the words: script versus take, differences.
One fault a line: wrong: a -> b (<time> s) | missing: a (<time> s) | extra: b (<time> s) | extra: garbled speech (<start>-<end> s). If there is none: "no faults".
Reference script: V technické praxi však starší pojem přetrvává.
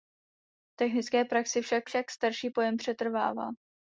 extra: však (1.8 s)